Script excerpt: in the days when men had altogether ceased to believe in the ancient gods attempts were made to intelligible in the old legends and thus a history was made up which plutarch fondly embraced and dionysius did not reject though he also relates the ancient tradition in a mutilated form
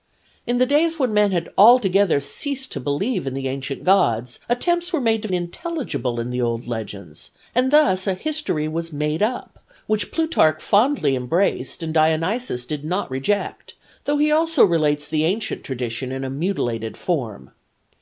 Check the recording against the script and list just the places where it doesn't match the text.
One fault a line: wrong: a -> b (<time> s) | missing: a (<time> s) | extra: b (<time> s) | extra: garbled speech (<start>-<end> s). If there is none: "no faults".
no faults